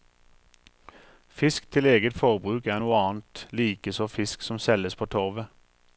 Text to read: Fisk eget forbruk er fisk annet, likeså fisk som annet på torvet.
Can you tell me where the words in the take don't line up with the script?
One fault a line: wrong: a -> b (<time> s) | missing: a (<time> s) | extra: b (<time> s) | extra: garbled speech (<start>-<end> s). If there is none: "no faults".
extra: til (1.7 s)
wrong: fisk -> noe (2.8 s)
wrong: annet -> selges (4.6 s)